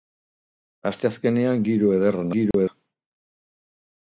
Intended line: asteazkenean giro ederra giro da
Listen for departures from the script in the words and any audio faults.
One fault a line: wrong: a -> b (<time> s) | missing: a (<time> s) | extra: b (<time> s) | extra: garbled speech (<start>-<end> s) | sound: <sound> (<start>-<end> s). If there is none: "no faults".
sound: dropout (2.5-2.5 s)